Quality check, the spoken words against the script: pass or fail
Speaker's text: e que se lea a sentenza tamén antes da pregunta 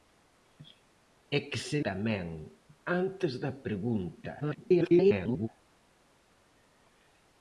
fail